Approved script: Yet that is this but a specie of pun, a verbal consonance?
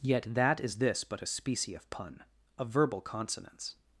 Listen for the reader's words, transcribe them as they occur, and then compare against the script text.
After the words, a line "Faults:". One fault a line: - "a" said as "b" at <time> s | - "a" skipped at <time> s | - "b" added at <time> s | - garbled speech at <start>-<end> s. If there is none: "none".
Yet that is this but a specie of pun, a verbal consonance?
Faults:
none